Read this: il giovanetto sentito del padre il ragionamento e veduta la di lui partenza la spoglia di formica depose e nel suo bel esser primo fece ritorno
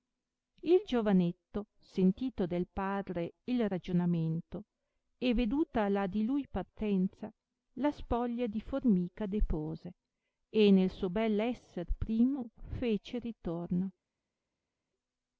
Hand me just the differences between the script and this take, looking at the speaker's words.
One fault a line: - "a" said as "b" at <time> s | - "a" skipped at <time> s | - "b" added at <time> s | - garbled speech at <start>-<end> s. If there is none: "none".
none